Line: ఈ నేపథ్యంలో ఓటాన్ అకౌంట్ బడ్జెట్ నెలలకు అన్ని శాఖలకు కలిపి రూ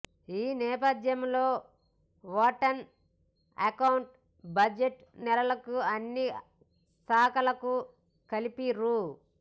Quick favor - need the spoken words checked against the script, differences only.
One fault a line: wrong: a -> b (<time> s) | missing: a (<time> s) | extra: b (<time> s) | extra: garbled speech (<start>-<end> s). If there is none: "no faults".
no faults